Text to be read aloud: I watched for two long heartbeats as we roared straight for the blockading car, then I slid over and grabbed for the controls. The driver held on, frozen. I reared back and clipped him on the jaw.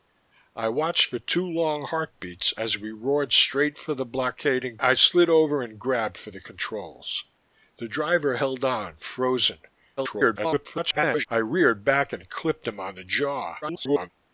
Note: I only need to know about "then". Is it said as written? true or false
false